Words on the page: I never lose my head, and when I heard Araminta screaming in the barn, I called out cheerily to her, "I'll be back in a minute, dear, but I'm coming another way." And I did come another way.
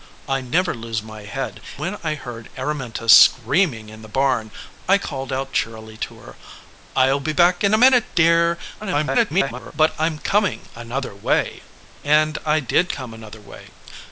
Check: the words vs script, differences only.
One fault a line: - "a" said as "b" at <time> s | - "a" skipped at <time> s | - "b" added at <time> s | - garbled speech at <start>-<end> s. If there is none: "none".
- "and" skipped at 1.6 s
- garbled speech at 8.8-9.7 s